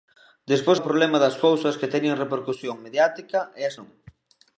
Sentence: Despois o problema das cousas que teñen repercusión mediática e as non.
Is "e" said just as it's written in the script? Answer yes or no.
yes